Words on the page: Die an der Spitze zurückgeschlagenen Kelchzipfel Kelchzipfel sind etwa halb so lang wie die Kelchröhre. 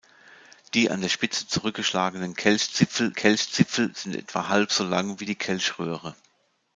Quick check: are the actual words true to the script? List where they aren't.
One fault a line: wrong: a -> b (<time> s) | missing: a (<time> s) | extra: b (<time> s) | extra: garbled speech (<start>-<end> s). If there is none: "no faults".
no faults